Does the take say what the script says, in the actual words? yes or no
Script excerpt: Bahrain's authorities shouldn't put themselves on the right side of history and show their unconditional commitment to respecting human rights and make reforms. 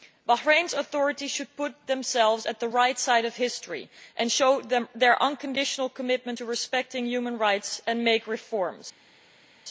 no